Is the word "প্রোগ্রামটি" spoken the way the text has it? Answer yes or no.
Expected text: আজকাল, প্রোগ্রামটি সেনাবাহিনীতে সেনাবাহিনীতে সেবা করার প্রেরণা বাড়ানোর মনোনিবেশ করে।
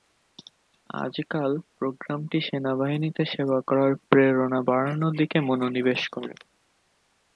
yes